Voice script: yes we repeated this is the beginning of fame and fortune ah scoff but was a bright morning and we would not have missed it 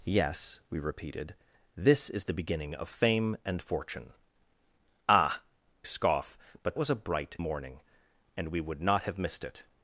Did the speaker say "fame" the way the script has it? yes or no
yes